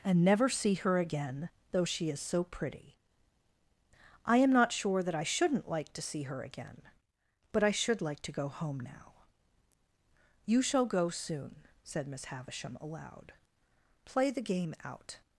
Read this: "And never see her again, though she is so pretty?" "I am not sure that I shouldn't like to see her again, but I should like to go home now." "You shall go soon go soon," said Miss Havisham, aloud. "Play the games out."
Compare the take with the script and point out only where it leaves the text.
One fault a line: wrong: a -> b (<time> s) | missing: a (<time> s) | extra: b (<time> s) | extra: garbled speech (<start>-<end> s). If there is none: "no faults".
missing: go soon (11.7 s)
wrong: games -> game (14.4 s)